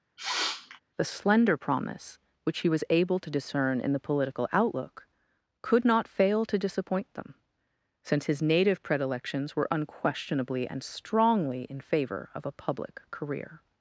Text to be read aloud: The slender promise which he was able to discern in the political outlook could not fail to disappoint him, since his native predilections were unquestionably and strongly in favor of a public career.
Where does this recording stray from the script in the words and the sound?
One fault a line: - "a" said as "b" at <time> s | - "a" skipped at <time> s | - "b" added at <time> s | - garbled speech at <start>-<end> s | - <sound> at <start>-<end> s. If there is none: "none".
- sniff at 0.2-0.8 s
- "him" said as "them" at 7.2 s